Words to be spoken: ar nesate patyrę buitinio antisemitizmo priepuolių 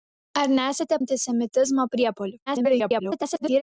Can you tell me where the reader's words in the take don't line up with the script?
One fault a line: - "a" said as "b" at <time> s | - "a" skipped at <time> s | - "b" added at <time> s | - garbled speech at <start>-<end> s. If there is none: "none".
- "patyrę buitinio" skipped at 1.0 s
- garbled speech at 2.5-3.6 s